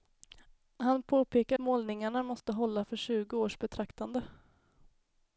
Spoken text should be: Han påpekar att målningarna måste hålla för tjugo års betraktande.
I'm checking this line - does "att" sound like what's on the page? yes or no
no